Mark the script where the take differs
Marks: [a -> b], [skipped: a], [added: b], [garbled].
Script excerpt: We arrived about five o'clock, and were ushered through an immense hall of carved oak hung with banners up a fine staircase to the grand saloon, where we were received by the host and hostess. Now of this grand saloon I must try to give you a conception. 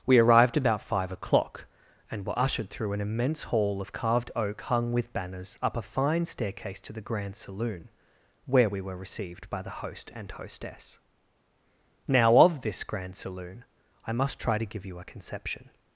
We arrived about five o'clock, and were ushered through an immense hall of carved oak hung with banners up a fine staircase to the grand saloon, where we were received by the host and hostess. Now of this grand saloon I must try to give you a conception.